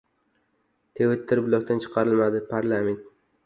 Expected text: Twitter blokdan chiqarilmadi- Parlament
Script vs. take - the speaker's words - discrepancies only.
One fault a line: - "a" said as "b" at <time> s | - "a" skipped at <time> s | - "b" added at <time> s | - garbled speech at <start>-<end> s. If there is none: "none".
none